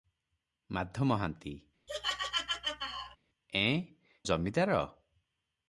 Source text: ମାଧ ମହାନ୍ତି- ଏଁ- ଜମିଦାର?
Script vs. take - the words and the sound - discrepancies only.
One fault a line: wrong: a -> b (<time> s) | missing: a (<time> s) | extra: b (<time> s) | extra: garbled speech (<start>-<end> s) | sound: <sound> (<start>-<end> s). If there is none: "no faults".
sound: laugh (1.9-3.2 s)